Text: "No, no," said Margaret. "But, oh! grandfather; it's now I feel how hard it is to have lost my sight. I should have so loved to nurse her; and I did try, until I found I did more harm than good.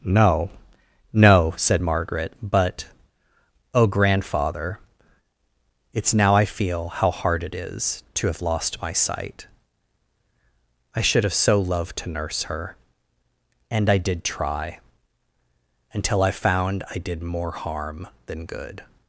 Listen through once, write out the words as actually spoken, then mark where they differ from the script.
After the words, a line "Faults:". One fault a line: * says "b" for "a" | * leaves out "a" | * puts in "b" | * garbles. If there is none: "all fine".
"No, no," said Margaret. "But, oh! grandfather; it's now I feel how hard it is to have lost my sight. I should have so loved to nurse her; and I did try, until I found I did more harm than good.
Faults:
all fine